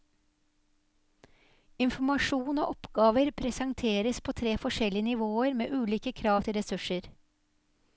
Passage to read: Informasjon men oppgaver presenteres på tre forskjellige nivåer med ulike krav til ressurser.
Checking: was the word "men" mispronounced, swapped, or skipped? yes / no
yes